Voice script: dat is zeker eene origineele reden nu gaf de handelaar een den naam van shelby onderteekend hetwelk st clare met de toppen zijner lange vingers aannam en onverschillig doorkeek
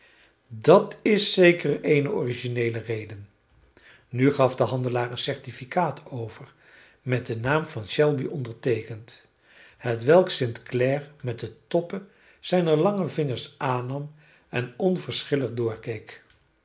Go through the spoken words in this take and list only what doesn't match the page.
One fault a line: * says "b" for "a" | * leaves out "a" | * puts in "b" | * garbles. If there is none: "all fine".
* puts in "certificaat over met"